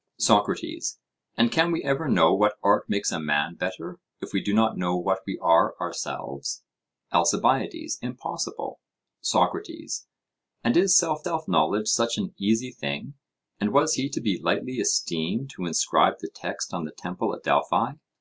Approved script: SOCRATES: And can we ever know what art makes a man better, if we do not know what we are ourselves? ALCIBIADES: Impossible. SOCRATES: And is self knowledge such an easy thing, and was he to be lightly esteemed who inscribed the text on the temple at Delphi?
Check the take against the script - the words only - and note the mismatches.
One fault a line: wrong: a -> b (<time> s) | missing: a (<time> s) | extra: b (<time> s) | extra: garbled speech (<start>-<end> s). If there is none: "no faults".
extra: self (11.2 s)